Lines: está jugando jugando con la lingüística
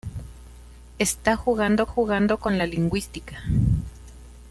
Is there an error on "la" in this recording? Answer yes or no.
no